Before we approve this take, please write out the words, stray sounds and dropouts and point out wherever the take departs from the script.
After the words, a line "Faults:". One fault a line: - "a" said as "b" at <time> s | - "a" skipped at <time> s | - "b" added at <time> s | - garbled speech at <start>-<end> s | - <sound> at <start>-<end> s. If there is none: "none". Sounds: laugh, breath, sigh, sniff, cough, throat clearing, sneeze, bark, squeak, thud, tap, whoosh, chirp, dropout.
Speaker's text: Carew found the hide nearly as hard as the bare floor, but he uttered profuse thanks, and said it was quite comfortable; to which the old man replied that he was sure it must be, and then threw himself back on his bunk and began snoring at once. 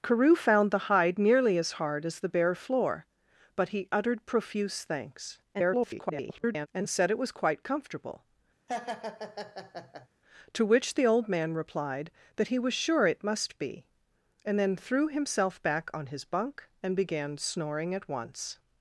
Carew found the hide nearly as hard as the bare floor, but he uttered profuse thanks, [garbled] and said it was quite comfortable; to which the old man replied that he was sure it must be, and then threw himself back on his bunk and began snoring at once.
Faults:
- garbled speech at 5.5-6.7 s
- laugh at 8.7-10.1 s